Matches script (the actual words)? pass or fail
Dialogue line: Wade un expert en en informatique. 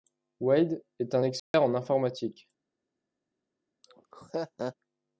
fail